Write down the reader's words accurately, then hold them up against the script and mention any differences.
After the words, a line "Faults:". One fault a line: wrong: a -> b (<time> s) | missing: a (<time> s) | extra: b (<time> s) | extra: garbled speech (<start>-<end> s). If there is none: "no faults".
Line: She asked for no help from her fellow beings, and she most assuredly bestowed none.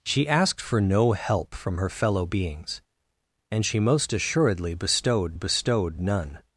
She asked for no help from her fellow beings, and she most assuredly bestowed bestowed none.
Faults:
extra: bestowed (5.3 s)